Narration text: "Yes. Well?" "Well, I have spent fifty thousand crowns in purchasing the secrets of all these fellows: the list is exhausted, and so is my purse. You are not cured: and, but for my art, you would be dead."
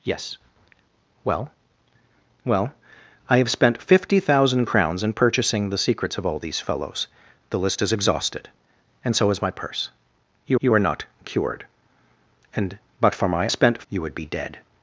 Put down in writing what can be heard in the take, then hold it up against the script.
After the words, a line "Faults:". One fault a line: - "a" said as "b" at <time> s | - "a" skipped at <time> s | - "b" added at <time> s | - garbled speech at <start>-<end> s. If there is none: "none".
"Yes. Well?" "Well, I have spent fifty thousand crowns in purchasing the secrets of all these fellows: the list is exhausted, and so is my purse. You you are not cured: and, but for my spent, you would be dead."
Faults:
- "you" added at 10.6 s
- "art" said as "spent" at 13.5 s